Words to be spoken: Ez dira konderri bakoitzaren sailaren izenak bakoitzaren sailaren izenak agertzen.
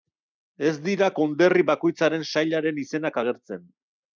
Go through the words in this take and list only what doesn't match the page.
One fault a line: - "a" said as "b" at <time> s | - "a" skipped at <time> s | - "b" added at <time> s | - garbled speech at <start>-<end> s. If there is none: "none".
- "bakoitzaren sailaren izenak" skipped at 3.2 s